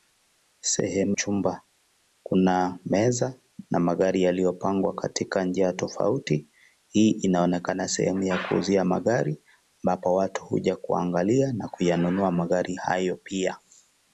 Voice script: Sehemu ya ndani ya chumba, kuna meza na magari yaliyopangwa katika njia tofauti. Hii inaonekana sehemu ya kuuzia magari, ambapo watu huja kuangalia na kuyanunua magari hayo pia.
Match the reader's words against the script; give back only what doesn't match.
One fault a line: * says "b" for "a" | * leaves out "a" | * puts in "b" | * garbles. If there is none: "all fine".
* leaves out "ya ndani ya"